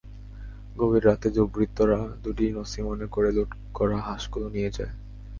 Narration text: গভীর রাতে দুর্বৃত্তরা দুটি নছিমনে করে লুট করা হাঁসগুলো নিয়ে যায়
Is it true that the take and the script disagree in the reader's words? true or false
false